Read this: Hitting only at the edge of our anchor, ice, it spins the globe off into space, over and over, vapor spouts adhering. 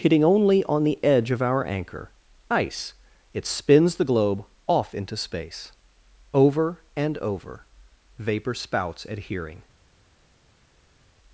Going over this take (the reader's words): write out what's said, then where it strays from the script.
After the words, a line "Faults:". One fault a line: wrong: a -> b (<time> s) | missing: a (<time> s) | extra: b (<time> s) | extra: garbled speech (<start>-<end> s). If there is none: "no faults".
Hitting only on the edge of our anchor, ice, it spins the globe off into space, over and over, vapor spouts adhering.
Faults:
wrong: at -> on (0.6 s)